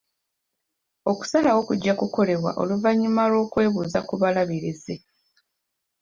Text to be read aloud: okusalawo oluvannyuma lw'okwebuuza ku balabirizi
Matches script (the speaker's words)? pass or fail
fail